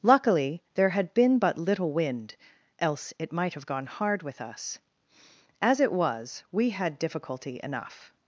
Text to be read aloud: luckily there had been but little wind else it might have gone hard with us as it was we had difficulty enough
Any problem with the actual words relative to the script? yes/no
no